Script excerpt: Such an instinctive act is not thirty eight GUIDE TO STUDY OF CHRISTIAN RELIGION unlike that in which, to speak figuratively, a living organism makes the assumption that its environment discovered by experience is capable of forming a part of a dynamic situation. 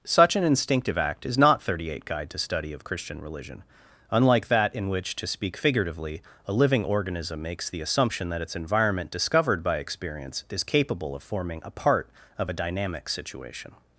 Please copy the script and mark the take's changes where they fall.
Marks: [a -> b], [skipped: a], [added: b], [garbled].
Such an instinctive act is not thirty eight GUIDE TO STUDY OF CHRISTIAN RELIGION unlike that in which, to speak figuratively, a living organism makes the assumption that its environment discovered by experience is capable of forming a part of a dynamic situation.